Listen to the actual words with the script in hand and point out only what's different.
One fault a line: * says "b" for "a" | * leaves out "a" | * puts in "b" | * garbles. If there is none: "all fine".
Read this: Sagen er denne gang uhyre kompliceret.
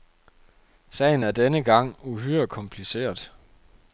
all fine